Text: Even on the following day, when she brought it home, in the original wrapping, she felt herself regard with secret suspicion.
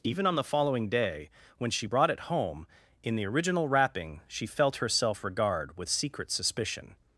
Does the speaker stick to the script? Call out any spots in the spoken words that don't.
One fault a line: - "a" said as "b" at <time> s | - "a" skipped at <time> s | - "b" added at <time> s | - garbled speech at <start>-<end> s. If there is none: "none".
none